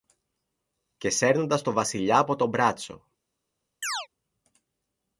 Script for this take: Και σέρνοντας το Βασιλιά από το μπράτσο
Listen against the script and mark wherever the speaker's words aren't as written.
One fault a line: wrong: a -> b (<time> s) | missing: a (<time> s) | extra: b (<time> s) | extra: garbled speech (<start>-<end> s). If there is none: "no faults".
no faults